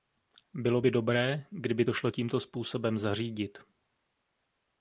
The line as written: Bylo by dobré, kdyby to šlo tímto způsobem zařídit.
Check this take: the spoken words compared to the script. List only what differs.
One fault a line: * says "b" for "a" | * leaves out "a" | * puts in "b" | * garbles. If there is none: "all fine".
all fine